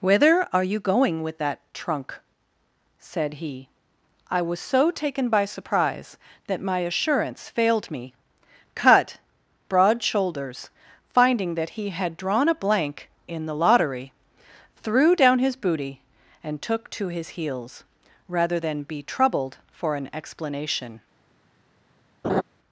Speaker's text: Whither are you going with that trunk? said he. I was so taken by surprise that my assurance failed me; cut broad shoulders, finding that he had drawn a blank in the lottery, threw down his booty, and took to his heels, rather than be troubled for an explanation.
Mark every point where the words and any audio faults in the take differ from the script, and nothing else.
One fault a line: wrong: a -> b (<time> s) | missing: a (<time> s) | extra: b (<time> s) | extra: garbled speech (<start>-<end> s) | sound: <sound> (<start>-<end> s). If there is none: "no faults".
sound: laugh (22.2-22.4 s)